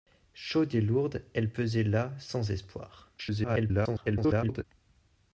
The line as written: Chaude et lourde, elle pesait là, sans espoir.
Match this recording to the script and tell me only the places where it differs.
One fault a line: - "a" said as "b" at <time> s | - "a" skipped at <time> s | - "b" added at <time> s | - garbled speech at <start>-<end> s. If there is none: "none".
- garbled speech at 3.2-4.6 s